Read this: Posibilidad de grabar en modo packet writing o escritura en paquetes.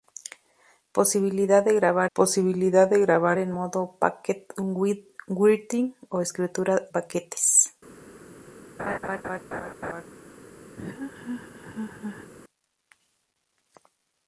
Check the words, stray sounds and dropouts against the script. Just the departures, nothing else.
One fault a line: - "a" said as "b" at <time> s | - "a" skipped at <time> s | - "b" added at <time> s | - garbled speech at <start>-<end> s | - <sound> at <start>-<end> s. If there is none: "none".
- "posibilidad de grabar" added at 2.1 s
- "en" skipped at 6.9 s
- laugh at 8.8-10.1 s
- laugh at 10.8-12.3 s